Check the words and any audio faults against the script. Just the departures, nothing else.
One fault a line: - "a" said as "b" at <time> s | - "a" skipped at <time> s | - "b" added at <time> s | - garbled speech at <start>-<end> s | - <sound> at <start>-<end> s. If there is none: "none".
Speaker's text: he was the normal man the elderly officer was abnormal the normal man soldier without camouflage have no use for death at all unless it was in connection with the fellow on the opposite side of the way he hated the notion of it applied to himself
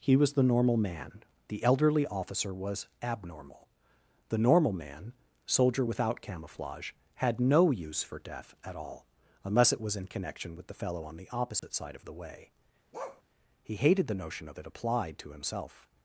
- "have" said as "had" at 7.2 s
- dropout at 11.6-11.6 s
- bark at 12.9-13.2 s